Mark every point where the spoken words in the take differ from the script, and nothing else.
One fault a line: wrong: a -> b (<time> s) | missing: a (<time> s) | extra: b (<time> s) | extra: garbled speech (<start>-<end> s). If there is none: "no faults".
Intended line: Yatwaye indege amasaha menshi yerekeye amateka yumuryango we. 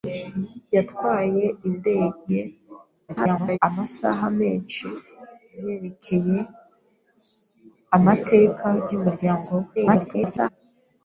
extra: garbled speech (3.1-3.6 s)
extra: garbled speech (9.8-10.5 s)